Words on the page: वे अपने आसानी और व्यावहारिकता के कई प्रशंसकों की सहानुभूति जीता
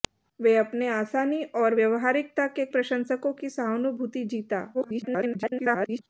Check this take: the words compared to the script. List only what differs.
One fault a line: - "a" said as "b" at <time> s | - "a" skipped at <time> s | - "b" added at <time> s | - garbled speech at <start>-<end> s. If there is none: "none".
- "कई" skipped at 2.6 s
- garbled speech at 4.7-6.0 s